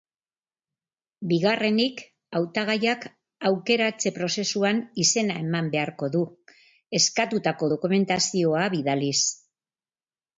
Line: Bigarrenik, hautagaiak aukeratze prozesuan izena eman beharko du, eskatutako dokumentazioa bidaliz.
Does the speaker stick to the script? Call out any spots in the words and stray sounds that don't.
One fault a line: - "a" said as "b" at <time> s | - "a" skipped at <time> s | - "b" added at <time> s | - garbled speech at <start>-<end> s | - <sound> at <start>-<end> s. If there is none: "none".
none